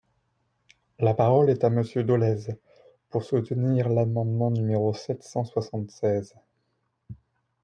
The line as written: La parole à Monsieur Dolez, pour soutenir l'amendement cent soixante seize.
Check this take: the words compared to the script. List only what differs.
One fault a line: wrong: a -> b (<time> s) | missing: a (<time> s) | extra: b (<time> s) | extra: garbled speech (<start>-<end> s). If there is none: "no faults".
extra: est (1.5 s)
extra: numéro sept (4.5 s)